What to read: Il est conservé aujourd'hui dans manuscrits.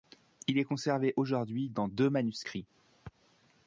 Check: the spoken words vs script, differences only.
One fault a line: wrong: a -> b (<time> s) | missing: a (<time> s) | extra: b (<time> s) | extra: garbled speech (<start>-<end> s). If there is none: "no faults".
extra: deux (1.8 s)